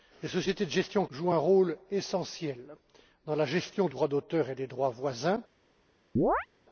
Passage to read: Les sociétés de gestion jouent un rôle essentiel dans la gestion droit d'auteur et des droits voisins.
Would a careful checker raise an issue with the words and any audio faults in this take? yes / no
yes